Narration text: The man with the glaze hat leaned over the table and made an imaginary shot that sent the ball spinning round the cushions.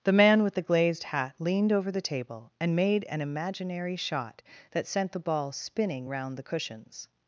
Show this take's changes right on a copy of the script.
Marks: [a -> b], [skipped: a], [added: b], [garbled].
The man with the [glaze -> glazed] hat leaned over the table and made an imaginary shot that sent the ball spinning round the cushions.